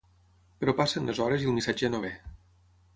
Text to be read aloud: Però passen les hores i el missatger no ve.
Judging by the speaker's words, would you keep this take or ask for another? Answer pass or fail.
pass